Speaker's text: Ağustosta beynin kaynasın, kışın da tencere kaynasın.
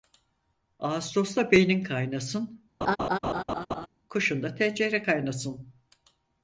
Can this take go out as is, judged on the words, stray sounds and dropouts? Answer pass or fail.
fail